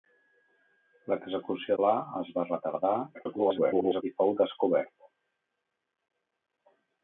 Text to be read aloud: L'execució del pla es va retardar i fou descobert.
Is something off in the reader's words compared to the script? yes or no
yes